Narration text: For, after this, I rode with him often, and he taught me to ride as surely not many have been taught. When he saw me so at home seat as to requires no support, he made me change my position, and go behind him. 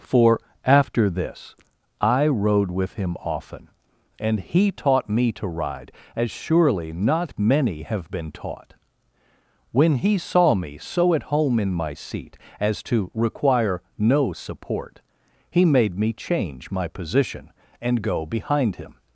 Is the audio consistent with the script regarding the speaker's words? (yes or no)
no